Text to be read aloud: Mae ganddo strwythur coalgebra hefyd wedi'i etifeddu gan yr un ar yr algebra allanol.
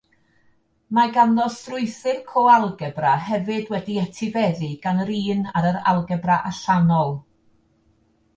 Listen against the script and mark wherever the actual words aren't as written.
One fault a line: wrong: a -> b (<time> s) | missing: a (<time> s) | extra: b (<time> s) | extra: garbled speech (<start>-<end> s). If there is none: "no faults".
no faults